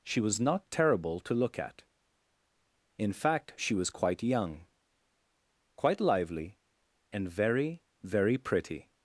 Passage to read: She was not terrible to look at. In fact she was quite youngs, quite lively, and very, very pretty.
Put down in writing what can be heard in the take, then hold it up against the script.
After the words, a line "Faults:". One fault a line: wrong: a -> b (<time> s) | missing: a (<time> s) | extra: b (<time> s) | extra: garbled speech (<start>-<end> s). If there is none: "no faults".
She was not terrible to look at. In fact she was quite young, quite lively, and very, very pretty.
Faults:
wrong: youngs -> young (4.2 s)